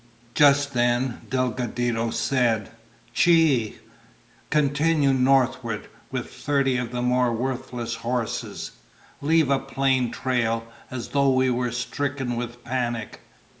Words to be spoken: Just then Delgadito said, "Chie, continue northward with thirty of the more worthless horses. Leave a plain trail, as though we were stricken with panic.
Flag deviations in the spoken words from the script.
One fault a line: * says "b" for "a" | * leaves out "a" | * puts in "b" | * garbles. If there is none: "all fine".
all fine